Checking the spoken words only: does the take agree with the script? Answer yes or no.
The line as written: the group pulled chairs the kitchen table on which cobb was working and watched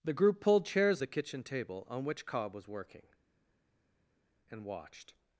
yes